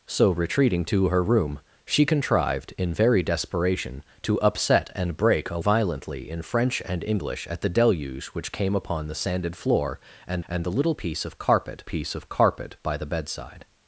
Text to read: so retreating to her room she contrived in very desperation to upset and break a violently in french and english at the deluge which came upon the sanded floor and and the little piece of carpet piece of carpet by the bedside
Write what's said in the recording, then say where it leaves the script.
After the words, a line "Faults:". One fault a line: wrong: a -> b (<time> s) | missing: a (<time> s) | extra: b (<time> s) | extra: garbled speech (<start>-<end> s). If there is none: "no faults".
so retreating to her room she contrived in very desperation to upset and break a violently in french and english at the deluge which came upon the sanded floor and and the little piece of carpet piece of carpet by the bedside
Faults:
no faults